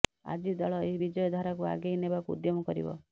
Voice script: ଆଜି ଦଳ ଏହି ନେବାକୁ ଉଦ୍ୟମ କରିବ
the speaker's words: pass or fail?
fail